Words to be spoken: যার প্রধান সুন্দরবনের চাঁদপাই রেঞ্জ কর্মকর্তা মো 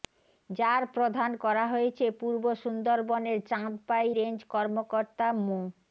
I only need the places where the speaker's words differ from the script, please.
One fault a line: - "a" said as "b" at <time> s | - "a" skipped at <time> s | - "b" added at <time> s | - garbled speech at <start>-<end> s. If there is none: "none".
- "করা হয়েছে পূর্ব" added at 1.4 s